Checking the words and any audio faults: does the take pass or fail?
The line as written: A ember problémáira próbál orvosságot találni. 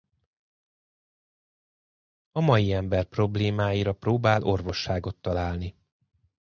fail